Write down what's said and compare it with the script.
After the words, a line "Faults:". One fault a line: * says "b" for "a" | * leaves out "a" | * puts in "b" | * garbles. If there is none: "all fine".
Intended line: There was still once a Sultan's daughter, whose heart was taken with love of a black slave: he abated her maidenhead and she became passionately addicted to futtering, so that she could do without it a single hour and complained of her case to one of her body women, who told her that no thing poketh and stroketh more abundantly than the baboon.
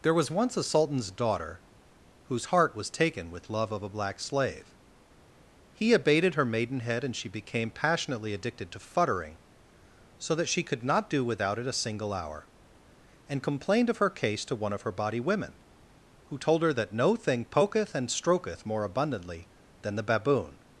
There was once a Sultan's daughter, whose heart was taken with love of a black slave: he abated her maidenhead and she became passionately addicted to futtering, so that she could not do without it a single hour and complained of her case to one of her body women, who told her that no thing poketh and stroketh more abundantly than the baboon.
Faults:
* leaves out "still"
* puts in "not"